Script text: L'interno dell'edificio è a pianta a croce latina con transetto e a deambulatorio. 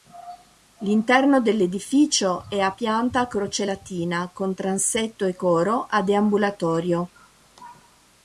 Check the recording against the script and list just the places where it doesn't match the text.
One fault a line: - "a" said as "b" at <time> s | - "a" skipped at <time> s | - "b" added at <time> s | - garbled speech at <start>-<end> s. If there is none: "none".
- "coro" added at 5.4 s